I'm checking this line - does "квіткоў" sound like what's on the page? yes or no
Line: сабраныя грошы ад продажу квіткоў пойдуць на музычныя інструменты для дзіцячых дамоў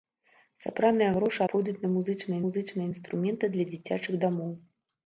no